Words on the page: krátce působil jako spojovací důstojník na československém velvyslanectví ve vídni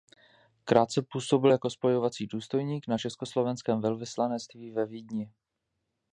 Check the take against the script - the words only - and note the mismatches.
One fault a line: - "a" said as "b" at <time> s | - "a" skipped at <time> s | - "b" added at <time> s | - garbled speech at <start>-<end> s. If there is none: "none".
none